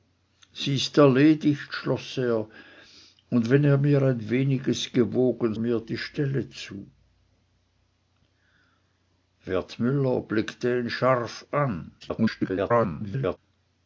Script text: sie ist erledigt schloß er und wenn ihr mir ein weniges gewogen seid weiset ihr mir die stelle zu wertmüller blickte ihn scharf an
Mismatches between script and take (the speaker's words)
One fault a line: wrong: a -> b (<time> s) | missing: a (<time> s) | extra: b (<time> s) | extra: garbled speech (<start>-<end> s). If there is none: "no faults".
missing: seid weiset ihr (5.5 s)
extra: garbled speech (12.0-13.4 s)